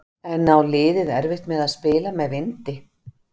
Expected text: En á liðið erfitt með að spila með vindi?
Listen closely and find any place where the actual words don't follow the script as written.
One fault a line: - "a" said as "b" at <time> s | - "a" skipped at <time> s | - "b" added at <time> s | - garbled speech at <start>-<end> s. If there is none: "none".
none